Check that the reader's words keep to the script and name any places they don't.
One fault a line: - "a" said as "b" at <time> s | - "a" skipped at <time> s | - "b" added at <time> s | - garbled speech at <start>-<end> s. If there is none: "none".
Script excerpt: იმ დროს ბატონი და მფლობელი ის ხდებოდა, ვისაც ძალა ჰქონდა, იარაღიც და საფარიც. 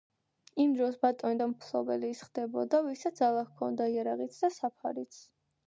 none